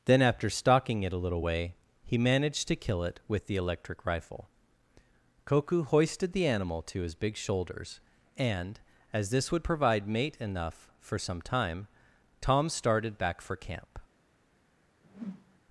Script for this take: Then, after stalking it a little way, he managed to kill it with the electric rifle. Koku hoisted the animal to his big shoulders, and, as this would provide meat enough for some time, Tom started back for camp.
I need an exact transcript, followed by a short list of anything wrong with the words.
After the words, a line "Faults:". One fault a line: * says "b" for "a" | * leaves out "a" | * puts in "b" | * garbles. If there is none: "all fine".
Then, after stalking it a little way, he managed to kill it with the electric rifle. Koku hoisted the animal to his big shoulders, and, as this would provide mate enough for some time, Tom started back for camp.
Faults:
* says "mate" for "meat"